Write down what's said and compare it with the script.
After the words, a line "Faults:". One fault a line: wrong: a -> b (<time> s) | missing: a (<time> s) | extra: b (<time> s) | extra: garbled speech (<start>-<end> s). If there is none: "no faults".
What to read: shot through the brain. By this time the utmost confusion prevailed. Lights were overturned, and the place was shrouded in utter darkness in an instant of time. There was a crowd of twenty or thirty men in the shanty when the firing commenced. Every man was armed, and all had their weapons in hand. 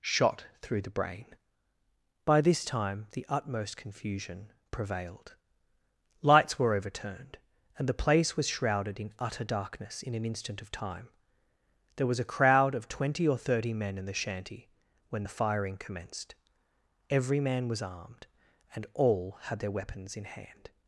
shot through the brain. By this time the utmost confusion prevailed. Lights were overturned, and the place was shrouded in utter darkness in an instant of time. There was a crowd of twenty or thirty men in the shanty when the firing commenced. Every man was armed, and all had their weapons in hand.
Faults:
no faults